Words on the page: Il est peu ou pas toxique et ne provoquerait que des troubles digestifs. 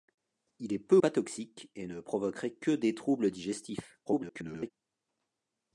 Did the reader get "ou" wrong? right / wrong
wrong